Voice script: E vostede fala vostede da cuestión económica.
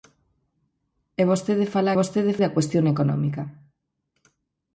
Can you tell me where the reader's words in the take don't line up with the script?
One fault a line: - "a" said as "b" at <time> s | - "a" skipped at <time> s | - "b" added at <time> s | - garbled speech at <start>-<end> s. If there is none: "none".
none